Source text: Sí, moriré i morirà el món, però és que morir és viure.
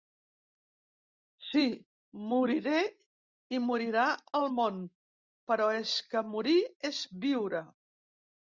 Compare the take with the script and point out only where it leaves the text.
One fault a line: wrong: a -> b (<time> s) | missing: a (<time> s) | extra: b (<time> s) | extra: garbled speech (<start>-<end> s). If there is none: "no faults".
no faults